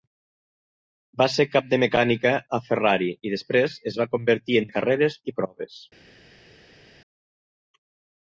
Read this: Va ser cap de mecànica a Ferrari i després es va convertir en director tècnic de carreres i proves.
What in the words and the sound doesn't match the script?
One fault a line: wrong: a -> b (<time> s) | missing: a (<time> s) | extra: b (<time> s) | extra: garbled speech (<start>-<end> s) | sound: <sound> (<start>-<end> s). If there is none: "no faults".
missing: director tècnic (4.7 s)